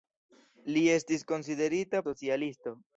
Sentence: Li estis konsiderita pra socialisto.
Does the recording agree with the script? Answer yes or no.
no